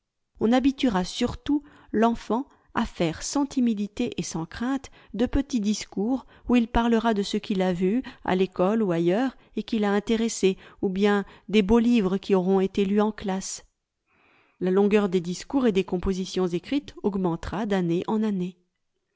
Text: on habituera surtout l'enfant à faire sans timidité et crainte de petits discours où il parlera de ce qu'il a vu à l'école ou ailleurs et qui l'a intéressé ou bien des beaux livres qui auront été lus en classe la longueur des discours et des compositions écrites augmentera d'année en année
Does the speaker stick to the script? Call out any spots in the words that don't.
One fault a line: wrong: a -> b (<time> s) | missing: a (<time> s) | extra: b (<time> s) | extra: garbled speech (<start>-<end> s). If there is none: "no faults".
extra: sans (4.2 s)